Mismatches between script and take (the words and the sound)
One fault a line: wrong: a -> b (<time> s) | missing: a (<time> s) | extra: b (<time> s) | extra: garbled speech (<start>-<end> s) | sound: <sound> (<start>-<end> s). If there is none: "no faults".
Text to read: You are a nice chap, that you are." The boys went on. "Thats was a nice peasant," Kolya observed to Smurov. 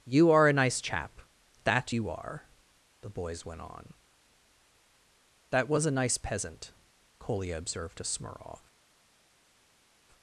wrong: Thats -> That (5.5 s)